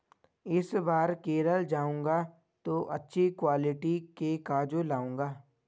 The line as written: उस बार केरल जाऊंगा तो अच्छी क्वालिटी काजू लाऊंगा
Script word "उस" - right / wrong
wrong